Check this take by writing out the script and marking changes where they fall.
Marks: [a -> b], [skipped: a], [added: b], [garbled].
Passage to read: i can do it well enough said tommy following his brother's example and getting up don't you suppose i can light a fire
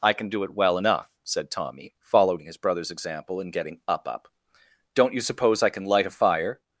i can do it well enough said tommy following his brother's example and getting up [added: up] don't you suppose i can light a fire